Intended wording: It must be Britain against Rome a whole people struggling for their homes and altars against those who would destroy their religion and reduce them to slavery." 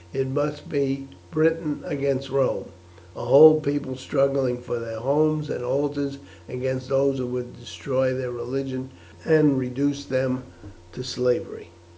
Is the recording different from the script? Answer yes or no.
no